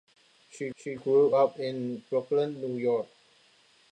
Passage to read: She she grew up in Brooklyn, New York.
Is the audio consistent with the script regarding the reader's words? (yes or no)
yes